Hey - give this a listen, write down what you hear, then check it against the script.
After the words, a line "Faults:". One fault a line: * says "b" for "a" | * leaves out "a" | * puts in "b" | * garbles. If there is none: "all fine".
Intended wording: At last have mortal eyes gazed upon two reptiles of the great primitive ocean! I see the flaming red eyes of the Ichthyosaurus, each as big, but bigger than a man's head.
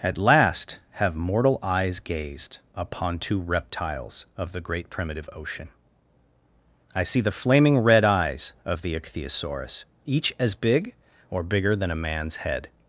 At last have mortal eyes gazed upon two reptiles of the great primitive ocean! I see the flaming red eyes of the Ichthyosaurus, each as big, or bigger than a man's head.
Faults:
* says "or" for "but"